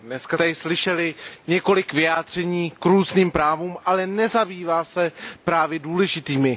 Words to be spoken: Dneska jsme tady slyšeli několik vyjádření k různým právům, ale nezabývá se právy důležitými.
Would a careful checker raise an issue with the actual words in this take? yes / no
yes